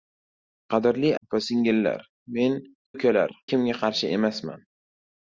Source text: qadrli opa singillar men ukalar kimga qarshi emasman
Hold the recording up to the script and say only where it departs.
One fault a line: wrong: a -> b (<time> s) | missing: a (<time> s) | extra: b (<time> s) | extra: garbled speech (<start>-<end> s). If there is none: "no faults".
no faults